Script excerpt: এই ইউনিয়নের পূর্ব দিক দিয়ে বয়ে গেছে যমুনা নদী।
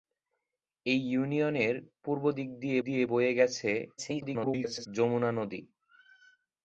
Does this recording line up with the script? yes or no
no